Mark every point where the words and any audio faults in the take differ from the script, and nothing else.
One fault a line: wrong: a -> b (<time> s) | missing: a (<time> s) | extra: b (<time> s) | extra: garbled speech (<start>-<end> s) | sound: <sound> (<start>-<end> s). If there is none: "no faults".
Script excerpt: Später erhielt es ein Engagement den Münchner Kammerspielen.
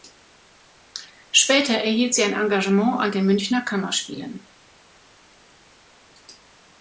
wrong: es -> sie (2.1 s)
extra: an (3.0 s)